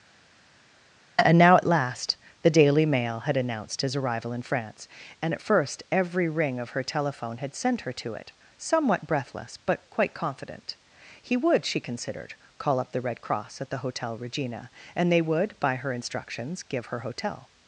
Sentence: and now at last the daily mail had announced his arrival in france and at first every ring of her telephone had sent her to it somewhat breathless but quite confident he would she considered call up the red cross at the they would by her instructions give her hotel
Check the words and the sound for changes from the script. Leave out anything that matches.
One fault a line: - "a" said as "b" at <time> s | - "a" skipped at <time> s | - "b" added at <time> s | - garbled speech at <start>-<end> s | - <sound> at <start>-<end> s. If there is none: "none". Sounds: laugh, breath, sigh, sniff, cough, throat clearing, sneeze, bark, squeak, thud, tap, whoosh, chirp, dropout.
- "hotel regina and" added at 13.8 s